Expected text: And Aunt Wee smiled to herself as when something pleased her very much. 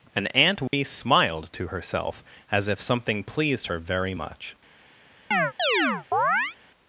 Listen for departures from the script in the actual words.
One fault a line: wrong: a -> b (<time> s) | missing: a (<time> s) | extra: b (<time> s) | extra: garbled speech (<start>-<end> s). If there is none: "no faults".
wrong: when -> if (2.7 s)